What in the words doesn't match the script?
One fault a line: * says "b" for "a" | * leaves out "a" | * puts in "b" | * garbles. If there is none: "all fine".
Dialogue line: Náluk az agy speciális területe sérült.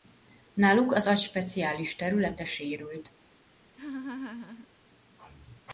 all fine